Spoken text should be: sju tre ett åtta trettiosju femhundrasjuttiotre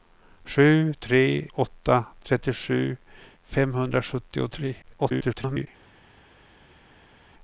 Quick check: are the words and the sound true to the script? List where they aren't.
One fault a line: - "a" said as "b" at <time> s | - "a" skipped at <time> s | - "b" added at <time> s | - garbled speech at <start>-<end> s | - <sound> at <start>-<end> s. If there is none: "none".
- "ett" skipped at 1.5 s
- garbled speech at 4.8-5.7 s